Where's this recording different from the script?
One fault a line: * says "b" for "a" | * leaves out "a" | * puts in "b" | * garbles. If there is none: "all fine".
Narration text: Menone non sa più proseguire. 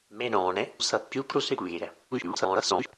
* leaves out "non"
* garbles